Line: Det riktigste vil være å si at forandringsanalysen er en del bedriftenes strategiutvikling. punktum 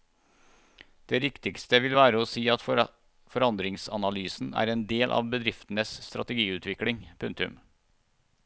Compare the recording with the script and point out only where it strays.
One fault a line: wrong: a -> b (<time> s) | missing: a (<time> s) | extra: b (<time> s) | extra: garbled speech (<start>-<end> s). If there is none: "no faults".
extra: av (5.2 s)